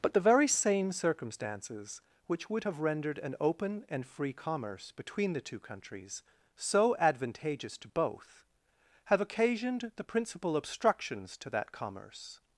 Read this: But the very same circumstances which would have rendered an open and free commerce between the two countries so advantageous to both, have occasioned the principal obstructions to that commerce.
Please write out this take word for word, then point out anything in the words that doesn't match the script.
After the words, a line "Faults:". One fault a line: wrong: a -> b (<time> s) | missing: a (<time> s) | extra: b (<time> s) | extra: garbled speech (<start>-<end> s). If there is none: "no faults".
But the very same circumstances which would have rendered an open and free commerce between the two countries so advantageous to both, have occasioned the principal obstructions to that commerce.
Faults:
no faults